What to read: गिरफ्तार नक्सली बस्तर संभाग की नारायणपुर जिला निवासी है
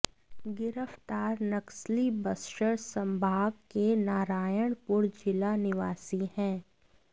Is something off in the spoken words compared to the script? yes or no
yes